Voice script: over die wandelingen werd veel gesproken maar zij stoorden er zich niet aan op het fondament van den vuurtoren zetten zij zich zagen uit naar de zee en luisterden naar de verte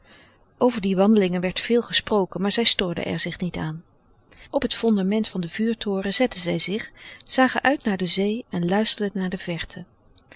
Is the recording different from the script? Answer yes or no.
no